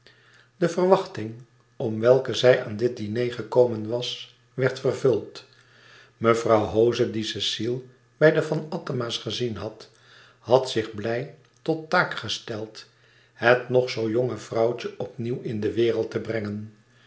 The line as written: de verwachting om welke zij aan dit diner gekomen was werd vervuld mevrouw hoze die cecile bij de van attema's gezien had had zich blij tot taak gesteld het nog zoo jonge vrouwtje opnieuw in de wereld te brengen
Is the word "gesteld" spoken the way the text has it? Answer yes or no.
yes